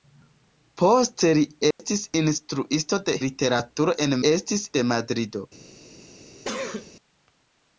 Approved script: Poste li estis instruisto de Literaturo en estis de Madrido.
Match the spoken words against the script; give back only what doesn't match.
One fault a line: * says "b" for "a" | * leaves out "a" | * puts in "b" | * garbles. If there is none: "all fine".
all fine